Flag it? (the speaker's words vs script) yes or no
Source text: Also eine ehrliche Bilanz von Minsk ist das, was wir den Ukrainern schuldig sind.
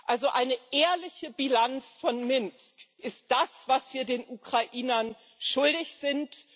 no